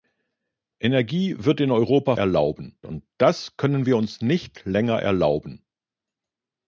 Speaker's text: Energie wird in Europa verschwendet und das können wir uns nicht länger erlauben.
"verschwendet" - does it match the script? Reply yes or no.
no